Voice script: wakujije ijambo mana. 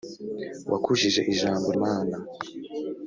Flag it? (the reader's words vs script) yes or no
no